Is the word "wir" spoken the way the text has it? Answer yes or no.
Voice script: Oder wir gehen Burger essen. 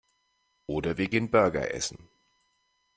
yes